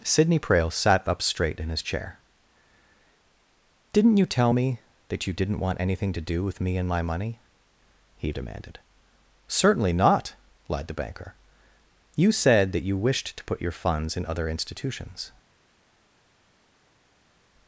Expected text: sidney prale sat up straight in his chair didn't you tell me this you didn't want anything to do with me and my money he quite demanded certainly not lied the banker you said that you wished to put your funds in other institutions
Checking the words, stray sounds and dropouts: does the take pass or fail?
fail